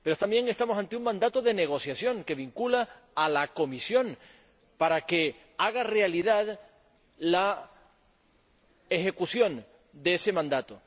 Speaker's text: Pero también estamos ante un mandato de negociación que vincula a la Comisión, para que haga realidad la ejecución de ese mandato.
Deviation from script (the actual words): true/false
false